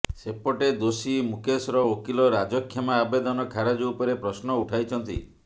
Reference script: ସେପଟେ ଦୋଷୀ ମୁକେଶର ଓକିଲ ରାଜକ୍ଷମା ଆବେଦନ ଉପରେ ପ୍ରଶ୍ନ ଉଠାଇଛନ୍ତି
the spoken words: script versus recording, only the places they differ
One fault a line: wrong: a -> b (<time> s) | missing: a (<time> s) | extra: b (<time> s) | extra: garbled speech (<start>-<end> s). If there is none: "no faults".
extra: ଖାରଜ (3.5 s)